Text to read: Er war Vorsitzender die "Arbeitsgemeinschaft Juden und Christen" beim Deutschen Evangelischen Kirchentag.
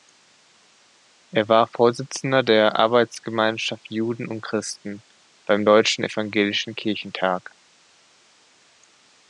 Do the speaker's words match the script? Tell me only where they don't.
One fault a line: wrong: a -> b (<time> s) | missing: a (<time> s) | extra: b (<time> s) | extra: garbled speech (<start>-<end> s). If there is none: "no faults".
wrong: die -> der (2.4 s)